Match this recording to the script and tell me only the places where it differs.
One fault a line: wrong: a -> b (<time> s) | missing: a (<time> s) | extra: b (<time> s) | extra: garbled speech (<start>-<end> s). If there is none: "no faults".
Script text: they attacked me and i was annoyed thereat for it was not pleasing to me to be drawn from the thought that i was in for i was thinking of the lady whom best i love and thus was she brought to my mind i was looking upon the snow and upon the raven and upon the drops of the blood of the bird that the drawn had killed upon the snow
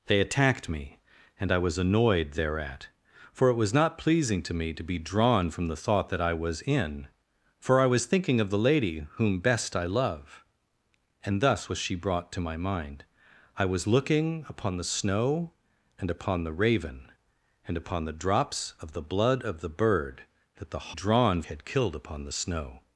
no faults